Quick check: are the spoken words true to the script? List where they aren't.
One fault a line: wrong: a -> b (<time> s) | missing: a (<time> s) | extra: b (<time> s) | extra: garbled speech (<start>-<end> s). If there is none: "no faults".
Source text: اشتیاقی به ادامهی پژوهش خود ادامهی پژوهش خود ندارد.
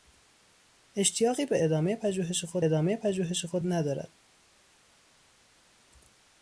no faults